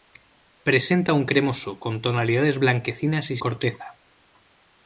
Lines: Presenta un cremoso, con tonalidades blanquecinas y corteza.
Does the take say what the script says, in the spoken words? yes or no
yes